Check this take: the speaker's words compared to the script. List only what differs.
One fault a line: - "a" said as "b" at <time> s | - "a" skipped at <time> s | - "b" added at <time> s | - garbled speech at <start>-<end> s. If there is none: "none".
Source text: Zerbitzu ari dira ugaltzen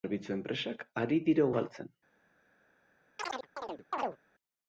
- "enpresak" added at 0.3 s